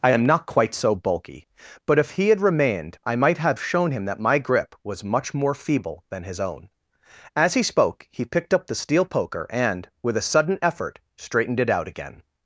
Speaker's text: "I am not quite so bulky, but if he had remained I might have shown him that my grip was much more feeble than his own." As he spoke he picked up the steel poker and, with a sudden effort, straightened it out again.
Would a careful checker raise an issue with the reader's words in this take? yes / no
no